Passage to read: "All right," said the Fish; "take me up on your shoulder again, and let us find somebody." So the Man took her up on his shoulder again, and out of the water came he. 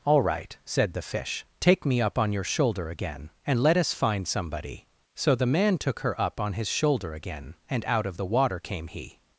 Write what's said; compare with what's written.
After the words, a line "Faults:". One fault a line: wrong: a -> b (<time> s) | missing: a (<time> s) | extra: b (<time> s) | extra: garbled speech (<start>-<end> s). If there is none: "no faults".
"All right," said the Fish; "take me up on your shoulder again, and let us find somebody." So the Man took her up on his shoulder again, and out of the water came he.
Faults:
no faults